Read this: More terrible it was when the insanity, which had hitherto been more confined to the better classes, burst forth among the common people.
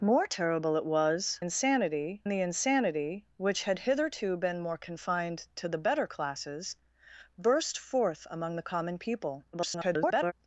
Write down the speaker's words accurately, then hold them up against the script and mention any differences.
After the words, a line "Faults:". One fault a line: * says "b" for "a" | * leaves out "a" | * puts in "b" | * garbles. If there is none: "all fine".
More terrible it was insanity the insanity, which had hitherto been more confined to the better classes, burst forth among the common people. [garbled]
Faults:
* says "insanity" for "when"
* garbles